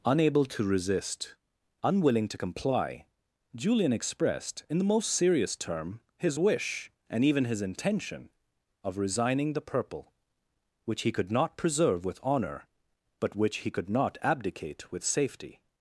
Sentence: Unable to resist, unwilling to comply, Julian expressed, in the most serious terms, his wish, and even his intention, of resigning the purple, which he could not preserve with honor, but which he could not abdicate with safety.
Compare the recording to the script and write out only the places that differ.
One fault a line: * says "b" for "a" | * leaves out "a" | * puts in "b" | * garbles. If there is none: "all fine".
* says "term" for "terms"